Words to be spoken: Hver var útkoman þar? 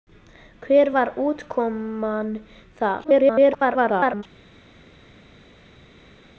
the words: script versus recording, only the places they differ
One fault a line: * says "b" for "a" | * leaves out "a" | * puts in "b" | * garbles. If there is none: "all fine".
* garbles